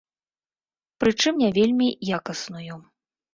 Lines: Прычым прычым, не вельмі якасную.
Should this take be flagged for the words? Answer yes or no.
yes